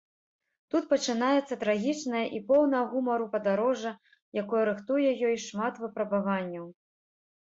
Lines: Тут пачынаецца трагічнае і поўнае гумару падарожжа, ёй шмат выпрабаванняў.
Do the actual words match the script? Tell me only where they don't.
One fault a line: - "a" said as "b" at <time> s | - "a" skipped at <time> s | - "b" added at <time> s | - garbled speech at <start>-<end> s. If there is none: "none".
- "якое рыхтуе" added at 4.4 s